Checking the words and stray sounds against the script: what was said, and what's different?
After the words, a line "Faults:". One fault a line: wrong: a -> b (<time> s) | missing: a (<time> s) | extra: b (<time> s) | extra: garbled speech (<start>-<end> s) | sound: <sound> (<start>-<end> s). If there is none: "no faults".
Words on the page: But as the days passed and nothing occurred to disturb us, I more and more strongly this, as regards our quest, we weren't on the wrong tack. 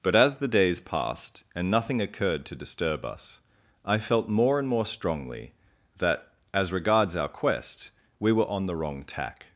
But as the days passed and nothing occurred to disturb us, I felt more and more strongly that, as regards our quest, we were on the wrong tack.
Faults:
extra: felt (4.0 s)
wrong: this -> that (6.0 s)
wrong: weren't -> were (8.3 s)